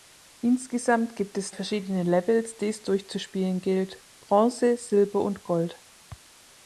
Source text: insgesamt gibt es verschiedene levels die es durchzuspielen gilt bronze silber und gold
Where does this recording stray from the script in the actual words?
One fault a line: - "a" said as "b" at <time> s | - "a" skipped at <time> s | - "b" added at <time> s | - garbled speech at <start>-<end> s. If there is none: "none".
none